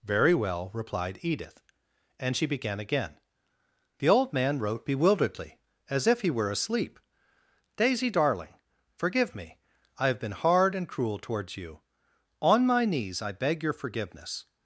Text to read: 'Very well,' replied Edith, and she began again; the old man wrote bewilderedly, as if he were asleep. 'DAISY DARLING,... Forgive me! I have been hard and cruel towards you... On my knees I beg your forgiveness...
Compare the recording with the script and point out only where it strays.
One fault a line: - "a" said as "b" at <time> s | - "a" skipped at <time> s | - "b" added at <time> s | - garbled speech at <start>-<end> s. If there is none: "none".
none